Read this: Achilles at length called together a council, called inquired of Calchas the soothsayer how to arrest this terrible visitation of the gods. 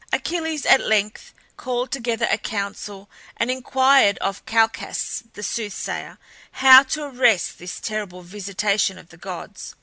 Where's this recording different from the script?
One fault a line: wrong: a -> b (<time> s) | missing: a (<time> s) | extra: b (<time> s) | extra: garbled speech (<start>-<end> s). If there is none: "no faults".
wrong: called -> and (3.3 s)